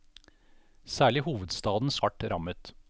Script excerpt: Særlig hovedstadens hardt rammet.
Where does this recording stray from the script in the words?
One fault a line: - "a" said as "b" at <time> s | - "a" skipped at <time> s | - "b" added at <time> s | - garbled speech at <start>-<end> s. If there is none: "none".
none